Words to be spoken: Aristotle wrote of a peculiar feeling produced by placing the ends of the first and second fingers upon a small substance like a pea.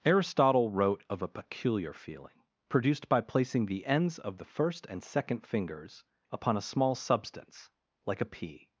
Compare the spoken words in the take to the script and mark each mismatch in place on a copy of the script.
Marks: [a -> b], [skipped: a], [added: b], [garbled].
Aristotle wrote of a peculiar feeling produced by placing the ends of the first and second fingers upon a small substance like a pea.